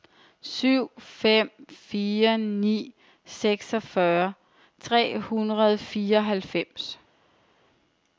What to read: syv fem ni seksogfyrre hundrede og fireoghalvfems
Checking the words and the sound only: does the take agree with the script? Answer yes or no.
no